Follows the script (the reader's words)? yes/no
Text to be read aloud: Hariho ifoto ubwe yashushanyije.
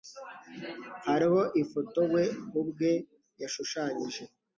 no